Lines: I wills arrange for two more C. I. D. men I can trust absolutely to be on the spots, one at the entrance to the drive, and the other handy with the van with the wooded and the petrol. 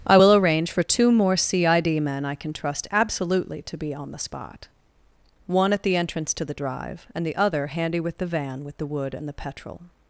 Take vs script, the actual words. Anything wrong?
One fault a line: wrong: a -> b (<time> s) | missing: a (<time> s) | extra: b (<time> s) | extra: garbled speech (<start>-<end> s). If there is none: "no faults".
wrong: wills -> will (0.1 s)
wrong: spots -> spot (4.2 s)
wrong: wooded -> wood (8.9 s)